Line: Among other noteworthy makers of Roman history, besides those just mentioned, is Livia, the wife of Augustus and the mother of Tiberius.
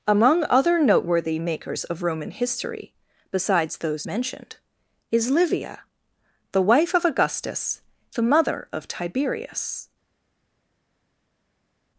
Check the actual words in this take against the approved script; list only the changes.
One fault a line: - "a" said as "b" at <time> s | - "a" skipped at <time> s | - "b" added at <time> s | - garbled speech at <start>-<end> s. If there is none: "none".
- "just" skipped at 4.1 s
- "and" skipped at 7.8 s